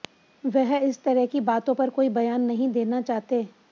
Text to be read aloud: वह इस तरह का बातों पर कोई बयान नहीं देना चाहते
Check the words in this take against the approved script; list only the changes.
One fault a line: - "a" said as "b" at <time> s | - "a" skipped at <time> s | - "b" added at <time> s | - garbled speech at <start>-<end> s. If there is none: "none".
- "का" said as "की" at 1.2 s